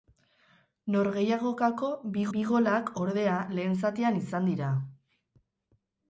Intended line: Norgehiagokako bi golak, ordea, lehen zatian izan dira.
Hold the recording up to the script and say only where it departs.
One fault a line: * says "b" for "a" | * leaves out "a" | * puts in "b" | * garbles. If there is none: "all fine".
* puts in "bi"